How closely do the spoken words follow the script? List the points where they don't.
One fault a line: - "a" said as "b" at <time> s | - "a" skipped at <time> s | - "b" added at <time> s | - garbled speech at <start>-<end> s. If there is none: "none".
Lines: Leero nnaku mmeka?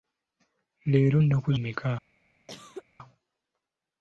none